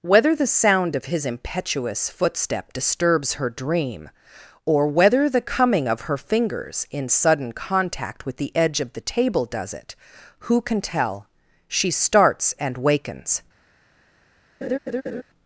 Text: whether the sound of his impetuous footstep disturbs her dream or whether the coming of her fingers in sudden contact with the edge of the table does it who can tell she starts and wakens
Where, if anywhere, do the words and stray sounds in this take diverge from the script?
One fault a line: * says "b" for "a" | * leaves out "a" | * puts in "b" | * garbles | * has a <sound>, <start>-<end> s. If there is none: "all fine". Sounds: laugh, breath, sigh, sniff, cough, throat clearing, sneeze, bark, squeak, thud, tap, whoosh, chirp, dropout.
* has a laugh, 14.6-15.2 s